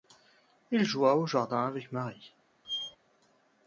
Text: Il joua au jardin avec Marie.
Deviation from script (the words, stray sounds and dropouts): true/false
true